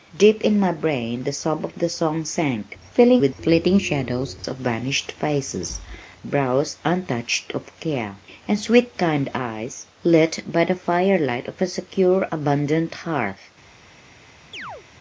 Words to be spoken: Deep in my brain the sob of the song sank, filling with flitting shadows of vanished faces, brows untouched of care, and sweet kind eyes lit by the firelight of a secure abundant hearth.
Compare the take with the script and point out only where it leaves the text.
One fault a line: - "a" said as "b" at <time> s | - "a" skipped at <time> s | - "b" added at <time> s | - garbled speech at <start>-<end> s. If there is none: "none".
none